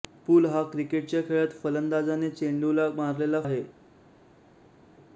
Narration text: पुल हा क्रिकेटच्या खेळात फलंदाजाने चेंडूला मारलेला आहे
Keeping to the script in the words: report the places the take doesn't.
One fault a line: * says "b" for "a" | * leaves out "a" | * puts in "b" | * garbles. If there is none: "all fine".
all fine